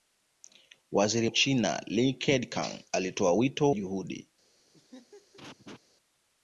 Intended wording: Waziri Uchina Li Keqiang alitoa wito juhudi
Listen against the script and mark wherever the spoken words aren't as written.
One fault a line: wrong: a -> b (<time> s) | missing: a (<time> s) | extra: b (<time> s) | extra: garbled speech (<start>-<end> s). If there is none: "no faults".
no faults